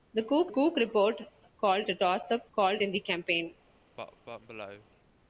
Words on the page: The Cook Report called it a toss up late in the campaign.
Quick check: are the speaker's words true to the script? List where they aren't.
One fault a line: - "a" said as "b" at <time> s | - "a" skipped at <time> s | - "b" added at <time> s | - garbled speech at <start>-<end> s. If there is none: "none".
- "Cook" added at 0.5 s
- "it" skipped at 1.9 s
- "late" said as "called" at 2.5 s